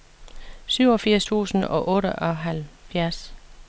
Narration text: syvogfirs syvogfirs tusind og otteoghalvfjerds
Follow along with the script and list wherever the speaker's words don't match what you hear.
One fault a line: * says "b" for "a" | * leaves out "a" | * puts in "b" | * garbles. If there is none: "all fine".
* leaves out "syvogfirs"